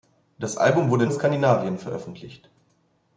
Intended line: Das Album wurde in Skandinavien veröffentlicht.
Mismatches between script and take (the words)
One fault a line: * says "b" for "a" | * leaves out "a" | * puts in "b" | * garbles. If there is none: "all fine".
all fine